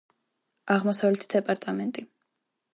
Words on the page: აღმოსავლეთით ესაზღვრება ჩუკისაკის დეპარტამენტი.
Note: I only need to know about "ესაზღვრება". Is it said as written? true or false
false